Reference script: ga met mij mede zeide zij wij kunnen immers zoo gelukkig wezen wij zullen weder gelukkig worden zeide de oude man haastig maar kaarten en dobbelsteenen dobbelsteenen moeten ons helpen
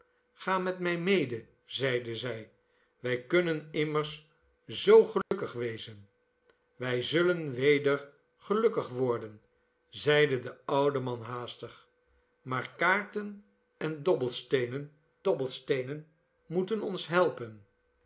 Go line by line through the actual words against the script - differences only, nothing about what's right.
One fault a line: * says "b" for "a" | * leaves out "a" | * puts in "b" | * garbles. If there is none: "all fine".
all fine